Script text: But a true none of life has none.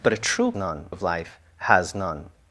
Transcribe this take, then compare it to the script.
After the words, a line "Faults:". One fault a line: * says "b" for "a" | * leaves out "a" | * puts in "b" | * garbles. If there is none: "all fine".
But a true none of life has none.
Faults:
all fine